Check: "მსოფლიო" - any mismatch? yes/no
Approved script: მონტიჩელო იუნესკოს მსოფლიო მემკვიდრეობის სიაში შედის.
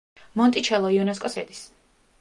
yes